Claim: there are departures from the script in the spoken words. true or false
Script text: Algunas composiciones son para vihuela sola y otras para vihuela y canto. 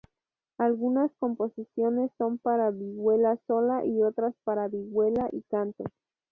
false